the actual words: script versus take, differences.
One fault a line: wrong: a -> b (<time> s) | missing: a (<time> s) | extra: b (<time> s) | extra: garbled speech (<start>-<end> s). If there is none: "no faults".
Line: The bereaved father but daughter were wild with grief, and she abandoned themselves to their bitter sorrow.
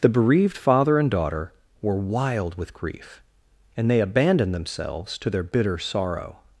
wrong: but -> and (1.0 s)
wrong: she -> they (3.9 s)